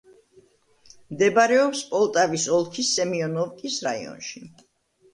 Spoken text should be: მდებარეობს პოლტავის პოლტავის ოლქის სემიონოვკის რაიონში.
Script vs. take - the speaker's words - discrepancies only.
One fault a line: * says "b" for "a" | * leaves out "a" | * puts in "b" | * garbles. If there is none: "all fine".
* leaves out "პოლტავის"